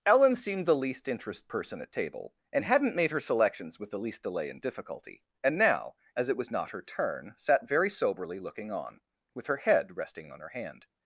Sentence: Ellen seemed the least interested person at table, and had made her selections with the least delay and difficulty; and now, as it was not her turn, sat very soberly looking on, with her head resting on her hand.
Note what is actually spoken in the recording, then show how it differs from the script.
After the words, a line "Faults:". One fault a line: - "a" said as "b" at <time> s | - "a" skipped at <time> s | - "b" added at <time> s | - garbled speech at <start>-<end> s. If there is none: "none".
Ellen seemed the least interest person at table, and hadn't made her selections with the least delay and difficulty; and now, as it was not her turn, sat very soberly looking on, with her head resting on her hand.
Faults:
- "interested" said as "interest" at 1.1 s
- "had" said as "hadn't" at 2.6 s